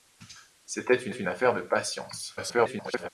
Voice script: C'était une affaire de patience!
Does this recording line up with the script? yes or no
no